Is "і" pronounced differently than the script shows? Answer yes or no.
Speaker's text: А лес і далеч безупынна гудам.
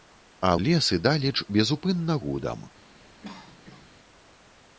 no